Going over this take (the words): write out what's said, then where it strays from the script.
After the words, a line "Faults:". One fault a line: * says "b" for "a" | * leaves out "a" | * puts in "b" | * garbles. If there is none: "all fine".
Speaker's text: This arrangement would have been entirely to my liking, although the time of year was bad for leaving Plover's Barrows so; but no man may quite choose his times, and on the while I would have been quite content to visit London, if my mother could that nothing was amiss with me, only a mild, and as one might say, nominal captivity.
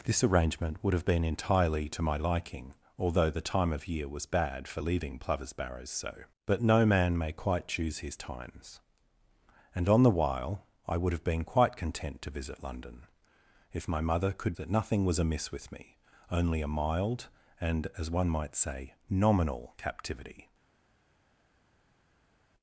This arrangement would have been entirely to my liking, although the time of year was bad for leaving Plover's Barrows so; but no man may quite choose his times, and on the while I would have been quite content to visit London, if my mother could that nothing was amiss with me, only a mild, and as one might say, nominal captivity.
Faults:
all fine